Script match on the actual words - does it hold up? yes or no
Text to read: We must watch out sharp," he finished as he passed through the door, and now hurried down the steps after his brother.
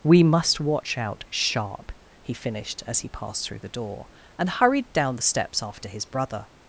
no